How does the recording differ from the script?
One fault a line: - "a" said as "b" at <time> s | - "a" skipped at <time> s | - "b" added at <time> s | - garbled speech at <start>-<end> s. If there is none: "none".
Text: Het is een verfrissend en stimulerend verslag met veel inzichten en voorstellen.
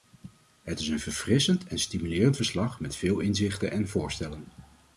none